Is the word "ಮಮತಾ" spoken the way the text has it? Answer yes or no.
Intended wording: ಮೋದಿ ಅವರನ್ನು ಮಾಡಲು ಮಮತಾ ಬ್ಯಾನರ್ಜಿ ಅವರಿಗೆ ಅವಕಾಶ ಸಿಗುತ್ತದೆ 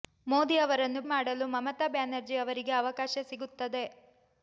yes